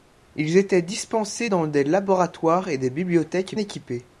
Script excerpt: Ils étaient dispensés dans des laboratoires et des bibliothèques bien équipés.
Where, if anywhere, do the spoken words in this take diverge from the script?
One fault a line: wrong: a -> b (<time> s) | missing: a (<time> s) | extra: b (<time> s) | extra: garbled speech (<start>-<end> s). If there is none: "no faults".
missing: bien (3.6 s)